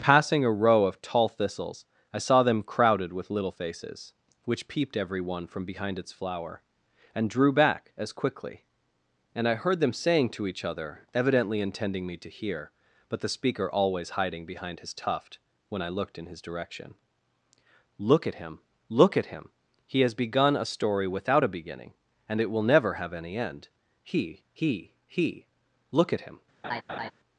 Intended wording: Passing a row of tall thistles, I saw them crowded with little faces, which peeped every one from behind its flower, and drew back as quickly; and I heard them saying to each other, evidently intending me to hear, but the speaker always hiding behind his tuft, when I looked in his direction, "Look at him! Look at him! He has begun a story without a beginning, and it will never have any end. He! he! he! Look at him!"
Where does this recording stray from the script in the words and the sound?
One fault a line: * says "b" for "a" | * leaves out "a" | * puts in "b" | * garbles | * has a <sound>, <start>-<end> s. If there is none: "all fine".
* has a laugh, 26.6-27.1 s